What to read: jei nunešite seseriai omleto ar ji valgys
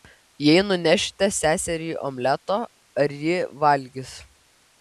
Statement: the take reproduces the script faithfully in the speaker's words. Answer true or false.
true